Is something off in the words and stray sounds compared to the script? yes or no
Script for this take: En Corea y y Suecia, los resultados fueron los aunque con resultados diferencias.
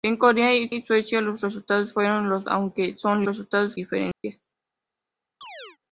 yes